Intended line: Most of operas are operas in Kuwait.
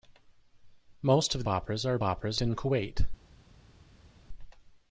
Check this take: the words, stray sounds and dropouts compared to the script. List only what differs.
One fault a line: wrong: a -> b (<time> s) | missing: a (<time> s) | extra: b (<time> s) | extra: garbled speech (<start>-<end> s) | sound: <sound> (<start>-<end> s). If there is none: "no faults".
no faults